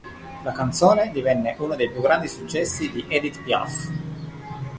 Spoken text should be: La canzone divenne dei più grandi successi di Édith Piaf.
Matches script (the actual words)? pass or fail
fail